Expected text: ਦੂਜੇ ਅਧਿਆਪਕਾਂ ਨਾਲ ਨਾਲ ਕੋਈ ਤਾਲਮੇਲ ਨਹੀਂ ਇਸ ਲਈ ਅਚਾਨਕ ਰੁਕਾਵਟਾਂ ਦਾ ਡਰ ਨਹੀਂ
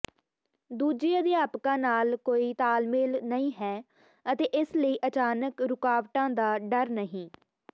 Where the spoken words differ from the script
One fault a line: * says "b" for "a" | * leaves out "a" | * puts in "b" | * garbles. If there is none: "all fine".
* leaves out "ਨਾਲ"
* puts in "ਹੈ ਅਤੇ"